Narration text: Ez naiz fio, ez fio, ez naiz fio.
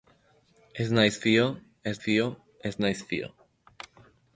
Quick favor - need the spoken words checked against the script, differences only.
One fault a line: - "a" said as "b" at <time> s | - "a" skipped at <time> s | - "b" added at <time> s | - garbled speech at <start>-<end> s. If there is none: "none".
none